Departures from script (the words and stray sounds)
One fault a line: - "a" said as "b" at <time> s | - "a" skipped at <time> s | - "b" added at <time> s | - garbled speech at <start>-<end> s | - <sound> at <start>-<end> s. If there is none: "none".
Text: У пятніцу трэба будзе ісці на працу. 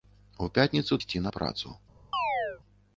- "трэба будзе" skipped at 1.0 s
- chirp at 2.1-2.6 s